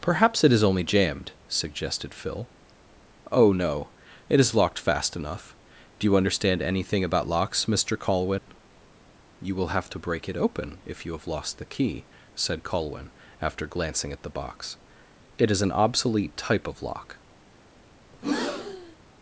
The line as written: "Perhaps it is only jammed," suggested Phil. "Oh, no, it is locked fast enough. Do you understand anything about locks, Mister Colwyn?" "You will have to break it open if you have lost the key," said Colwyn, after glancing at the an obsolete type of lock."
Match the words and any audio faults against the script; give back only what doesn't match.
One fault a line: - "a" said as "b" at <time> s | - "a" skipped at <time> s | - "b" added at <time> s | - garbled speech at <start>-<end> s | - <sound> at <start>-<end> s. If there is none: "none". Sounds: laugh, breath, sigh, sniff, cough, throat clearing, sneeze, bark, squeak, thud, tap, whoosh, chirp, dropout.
- dropout at 8.4-8.5 s
- "box It is" added at 14.3 s
- breath at 18.1-19.0 s